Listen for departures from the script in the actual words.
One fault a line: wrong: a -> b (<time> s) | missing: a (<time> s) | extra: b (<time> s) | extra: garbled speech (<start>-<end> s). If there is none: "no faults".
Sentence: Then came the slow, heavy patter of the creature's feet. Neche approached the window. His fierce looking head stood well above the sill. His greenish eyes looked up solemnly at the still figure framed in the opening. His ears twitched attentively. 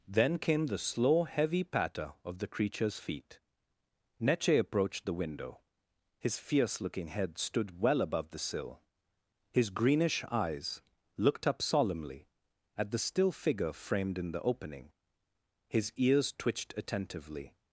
no faults